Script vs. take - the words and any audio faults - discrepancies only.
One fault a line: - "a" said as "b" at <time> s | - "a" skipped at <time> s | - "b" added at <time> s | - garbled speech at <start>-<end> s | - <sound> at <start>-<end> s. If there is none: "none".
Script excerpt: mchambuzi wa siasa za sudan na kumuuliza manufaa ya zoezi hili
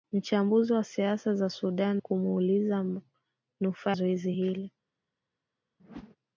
- "na" skipped at 2.0 s
- "ya" skipped at 3.9 s
- whoosh at 5.8-6.2 s